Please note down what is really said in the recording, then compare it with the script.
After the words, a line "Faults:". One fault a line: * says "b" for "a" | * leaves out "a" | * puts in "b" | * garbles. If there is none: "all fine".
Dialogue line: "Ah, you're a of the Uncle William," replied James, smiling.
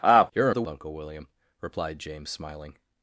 "Ah, you're a of the Uncle William," replied James, smiling.
Faults:
all fine